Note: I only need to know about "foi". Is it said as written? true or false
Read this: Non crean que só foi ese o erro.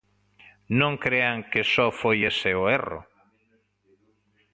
true